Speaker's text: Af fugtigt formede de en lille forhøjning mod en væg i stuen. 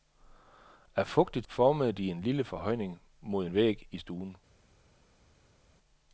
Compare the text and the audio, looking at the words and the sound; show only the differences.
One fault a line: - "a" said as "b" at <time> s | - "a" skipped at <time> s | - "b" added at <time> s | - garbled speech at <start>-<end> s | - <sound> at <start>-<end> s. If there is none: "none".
none